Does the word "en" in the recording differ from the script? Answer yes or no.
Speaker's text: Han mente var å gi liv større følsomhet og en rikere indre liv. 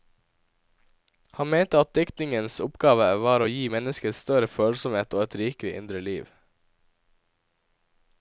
yes